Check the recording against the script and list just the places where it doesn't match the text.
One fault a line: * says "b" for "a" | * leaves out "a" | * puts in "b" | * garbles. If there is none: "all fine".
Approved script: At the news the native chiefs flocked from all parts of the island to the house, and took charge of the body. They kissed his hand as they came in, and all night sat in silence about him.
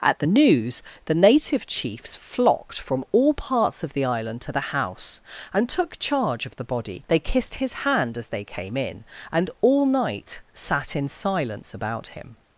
all fine